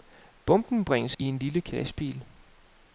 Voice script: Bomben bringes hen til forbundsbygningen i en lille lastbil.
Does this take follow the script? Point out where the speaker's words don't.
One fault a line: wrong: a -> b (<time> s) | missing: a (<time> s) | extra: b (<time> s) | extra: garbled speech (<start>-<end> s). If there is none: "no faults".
missing: hen til forbundsbygningen (1.1 s)